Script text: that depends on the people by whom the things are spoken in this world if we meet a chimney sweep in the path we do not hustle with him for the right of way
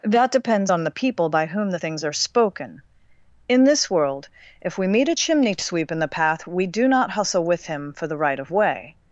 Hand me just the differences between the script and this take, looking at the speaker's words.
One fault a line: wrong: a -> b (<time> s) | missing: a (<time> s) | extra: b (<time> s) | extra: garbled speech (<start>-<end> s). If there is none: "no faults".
no faults